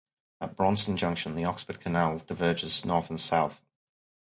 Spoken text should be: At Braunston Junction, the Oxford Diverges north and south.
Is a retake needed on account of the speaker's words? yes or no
yes